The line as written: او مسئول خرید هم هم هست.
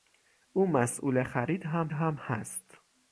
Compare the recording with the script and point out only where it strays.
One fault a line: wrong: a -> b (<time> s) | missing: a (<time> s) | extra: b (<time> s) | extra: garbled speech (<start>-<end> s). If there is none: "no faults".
no faults